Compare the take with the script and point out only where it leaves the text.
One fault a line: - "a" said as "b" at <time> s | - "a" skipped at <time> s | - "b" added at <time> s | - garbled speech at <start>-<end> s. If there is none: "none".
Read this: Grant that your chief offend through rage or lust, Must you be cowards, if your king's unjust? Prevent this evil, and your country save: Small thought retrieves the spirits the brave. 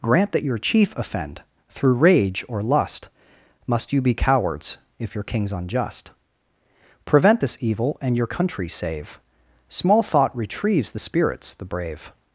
none